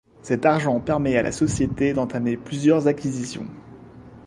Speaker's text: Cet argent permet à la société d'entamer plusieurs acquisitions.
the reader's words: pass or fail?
pass